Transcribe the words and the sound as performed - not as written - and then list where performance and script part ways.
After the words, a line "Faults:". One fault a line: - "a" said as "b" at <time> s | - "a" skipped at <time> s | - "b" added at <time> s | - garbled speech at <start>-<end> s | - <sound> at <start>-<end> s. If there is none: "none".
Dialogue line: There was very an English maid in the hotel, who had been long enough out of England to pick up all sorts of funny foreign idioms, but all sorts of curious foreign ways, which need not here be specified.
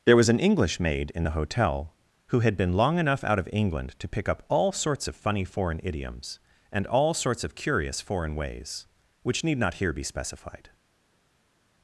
There was an English maid in the hotel, who had been long enough out of England to pick up all sorts of funny foreign idioms, and all sorts of curious foreign ways, which need not here be specified.
Faults:
- "very" skipped at 0.3 s
- "but" said as "and" at 6.7 s